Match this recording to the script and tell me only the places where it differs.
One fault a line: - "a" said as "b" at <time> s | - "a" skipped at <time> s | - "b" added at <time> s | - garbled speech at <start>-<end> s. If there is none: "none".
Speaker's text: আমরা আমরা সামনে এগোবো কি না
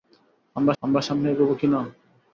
none